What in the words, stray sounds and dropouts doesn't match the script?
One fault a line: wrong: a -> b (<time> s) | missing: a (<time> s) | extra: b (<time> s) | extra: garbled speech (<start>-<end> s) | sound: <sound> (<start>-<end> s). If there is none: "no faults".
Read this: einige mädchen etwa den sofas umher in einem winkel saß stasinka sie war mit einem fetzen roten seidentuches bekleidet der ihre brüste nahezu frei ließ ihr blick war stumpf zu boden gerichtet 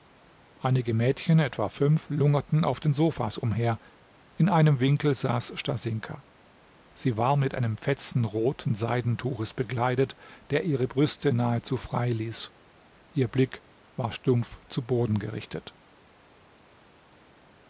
extra: fünf lungerten auf (1.7 s)